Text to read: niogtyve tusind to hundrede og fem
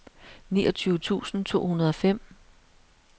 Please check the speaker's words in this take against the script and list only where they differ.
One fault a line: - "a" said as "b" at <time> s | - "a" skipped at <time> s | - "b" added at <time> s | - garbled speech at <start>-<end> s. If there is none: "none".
none